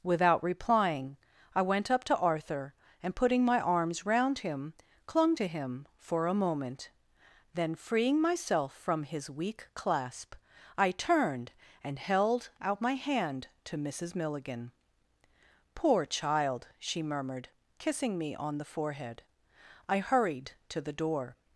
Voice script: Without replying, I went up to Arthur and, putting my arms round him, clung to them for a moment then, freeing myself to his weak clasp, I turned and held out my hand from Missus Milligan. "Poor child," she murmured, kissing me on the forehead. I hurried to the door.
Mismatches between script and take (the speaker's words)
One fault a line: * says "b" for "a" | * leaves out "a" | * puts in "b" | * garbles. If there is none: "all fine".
* says "him" for "them"
* says "from" for "to"
* says "to" for "from"